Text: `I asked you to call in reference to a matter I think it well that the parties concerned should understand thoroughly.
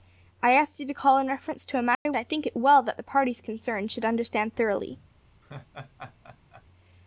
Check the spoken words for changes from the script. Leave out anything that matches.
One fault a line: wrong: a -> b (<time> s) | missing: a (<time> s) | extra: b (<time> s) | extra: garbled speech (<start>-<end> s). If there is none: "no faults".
no faults